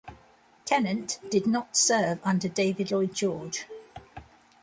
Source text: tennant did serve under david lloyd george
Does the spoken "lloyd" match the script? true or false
true